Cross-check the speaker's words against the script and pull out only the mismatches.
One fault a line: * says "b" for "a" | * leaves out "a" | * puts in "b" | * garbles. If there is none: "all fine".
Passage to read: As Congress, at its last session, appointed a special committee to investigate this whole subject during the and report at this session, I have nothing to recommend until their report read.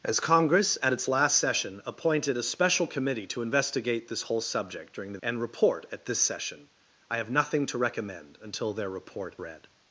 all fine